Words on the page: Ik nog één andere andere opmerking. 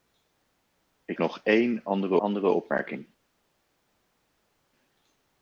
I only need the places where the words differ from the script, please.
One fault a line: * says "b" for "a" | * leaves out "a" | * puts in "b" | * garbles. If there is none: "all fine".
all fine